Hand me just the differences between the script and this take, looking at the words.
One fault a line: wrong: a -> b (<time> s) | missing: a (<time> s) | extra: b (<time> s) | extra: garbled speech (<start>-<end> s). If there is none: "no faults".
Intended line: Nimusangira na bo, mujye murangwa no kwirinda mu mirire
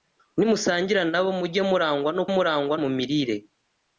wrong: kwirinda -> murangwa (2.3 s)